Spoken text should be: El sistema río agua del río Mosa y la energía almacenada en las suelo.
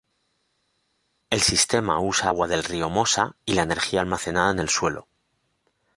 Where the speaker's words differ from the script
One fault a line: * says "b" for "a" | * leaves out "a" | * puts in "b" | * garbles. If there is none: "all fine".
* says "usa" for "río"
* says "el" for "las"